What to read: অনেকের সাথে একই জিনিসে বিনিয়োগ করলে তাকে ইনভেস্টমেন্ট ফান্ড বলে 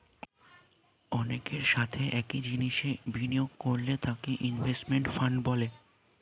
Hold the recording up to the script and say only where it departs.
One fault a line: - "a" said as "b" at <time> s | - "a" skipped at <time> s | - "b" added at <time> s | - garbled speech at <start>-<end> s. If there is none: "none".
none